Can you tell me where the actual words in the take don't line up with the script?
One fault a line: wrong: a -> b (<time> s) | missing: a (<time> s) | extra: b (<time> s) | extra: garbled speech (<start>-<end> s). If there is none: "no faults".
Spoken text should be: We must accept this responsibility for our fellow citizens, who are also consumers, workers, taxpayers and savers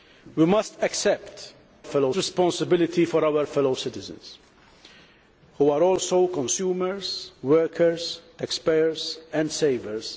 wrong: this -> fellow (1.8 s)